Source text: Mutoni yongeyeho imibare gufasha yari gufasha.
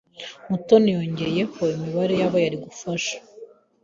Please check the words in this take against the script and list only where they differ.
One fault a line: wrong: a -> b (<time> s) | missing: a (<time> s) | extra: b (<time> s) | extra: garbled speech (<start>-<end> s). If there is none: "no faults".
wrong: gufasha -> yabo (2.2 s)